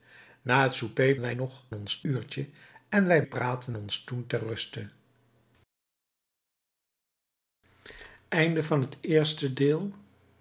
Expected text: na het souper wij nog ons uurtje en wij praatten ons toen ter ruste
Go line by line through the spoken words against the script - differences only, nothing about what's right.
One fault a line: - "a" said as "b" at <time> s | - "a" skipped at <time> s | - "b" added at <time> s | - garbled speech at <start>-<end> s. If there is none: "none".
none